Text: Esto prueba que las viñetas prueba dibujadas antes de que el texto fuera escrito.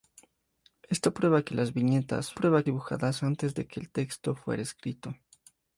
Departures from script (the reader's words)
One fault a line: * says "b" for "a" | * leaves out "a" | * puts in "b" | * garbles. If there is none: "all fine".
all fine